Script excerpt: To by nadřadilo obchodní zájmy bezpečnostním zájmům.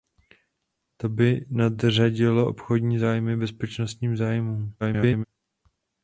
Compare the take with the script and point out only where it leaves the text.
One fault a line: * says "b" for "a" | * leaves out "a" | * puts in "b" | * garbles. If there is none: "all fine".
* garbles